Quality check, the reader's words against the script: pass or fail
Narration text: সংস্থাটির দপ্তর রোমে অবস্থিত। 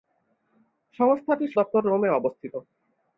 pass